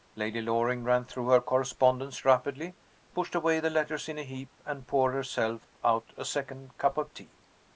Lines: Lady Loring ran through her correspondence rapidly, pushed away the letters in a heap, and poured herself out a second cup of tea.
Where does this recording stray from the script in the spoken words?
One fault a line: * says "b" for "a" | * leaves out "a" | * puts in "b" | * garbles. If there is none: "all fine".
all fine